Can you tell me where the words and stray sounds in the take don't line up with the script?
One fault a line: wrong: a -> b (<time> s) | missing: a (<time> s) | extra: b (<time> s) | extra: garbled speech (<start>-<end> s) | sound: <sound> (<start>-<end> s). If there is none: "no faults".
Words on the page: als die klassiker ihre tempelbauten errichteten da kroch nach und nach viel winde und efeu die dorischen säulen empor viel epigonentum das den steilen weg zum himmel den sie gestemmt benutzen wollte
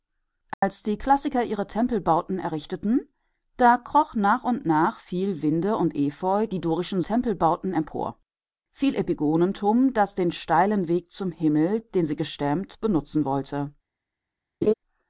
sound: dropout (0.5-0.6 s)
wrong: säulen -> tempelbauten (7.0 s)
sound: laugh (14.6-14.7 s)